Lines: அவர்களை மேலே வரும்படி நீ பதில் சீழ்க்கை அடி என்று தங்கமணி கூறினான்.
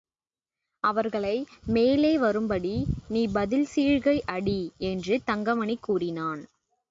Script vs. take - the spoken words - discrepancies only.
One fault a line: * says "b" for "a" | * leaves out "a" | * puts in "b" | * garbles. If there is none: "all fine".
all fine